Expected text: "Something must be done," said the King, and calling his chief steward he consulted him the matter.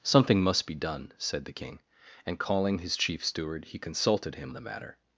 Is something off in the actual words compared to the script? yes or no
no